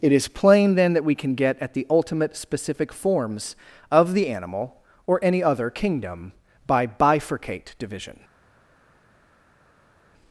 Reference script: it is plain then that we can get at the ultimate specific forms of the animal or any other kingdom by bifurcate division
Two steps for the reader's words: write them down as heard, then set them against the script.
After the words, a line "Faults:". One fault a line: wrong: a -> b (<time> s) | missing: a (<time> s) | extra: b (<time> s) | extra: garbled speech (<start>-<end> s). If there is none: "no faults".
it is plain then that we can get at the ultimate specific forms of the animal or any other kingdom by bifurcate division
Faults:
no faults